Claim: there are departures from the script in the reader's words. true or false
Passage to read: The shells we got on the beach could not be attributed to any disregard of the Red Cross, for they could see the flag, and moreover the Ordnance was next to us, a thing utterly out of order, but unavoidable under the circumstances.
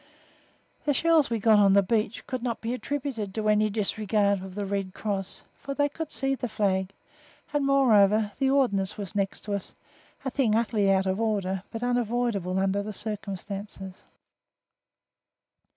false